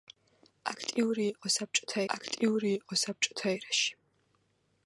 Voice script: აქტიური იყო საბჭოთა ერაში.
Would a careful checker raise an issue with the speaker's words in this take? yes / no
yes